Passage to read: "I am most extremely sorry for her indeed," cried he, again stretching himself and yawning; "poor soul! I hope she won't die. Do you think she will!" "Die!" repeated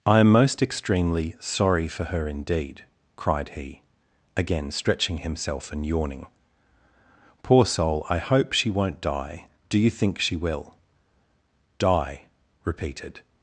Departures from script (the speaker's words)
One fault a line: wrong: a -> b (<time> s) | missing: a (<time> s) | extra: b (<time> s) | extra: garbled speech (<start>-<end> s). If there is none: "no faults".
no faults